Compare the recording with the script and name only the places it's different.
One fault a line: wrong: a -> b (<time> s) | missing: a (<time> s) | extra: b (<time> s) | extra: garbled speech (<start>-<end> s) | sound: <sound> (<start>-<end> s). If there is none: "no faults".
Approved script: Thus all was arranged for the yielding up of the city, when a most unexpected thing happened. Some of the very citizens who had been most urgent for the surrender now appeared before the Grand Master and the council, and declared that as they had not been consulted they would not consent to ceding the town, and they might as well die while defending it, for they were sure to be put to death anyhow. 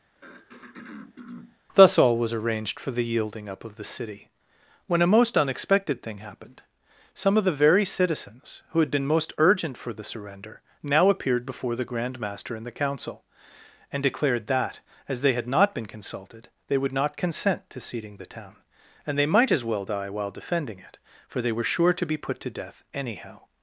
sound: throat clearing (0.1-1.6 s)